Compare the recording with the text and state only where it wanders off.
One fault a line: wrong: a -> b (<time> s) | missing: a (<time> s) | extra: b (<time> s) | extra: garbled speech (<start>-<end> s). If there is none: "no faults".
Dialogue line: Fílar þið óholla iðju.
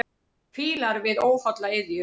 wrong: þið -> við (1.1 s)